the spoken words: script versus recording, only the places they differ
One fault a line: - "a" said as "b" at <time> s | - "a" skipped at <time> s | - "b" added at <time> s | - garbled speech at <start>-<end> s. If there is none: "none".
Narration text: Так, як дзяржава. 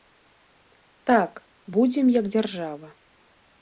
- "будзем" added at 1.8 s